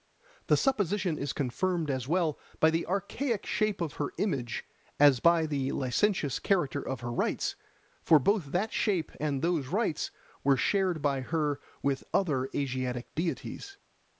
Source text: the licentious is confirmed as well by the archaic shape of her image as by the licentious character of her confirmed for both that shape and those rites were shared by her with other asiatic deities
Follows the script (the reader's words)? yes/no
no